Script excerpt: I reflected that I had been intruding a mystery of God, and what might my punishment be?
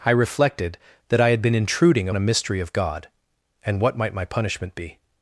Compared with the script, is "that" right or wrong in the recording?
right